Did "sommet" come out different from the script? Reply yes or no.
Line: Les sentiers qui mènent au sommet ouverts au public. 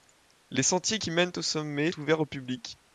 no